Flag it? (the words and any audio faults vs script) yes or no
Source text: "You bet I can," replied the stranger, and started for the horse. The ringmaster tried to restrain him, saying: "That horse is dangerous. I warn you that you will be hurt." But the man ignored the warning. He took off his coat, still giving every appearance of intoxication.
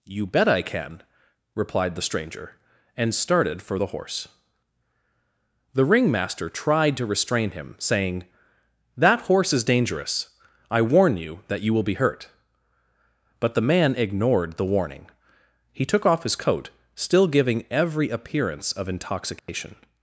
yes